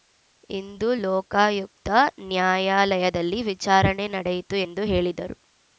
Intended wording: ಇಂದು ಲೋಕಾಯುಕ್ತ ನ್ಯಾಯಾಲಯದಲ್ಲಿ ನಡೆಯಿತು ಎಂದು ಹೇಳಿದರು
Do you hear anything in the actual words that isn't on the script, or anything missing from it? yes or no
yes